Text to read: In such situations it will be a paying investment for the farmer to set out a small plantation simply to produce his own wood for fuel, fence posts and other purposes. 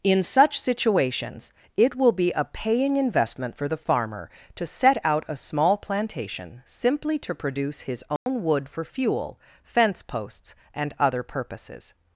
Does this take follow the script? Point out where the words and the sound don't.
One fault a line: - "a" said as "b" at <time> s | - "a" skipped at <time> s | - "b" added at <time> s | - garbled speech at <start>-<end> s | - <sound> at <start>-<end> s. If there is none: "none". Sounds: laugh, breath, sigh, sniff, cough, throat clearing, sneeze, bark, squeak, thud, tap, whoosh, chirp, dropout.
- dropout at 8.2-8.3 s